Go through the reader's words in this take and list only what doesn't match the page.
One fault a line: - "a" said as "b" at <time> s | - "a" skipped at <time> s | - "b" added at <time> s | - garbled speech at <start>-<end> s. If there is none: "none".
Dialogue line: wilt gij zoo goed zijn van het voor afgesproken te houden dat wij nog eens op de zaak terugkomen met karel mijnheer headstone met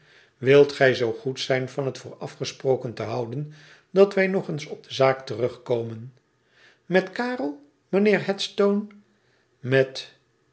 none